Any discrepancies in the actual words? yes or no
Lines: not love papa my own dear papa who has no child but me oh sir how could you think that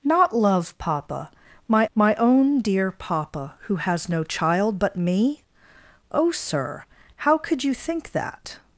yes